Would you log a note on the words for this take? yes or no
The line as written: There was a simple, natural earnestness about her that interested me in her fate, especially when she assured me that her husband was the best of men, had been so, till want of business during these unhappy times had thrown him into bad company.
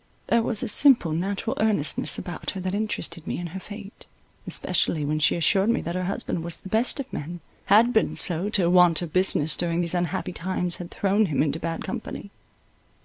no